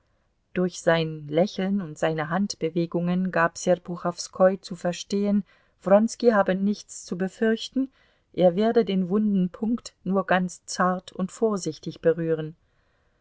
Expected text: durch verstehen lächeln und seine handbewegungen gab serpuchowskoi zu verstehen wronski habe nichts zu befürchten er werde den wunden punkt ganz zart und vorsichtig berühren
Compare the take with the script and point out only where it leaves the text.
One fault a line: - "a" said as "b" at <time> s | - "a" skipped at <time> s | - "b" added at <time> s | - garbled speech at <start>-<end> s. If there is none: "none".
- "verstehen" said as "sein" at 0.8 s
- "nur" added at 10.0 s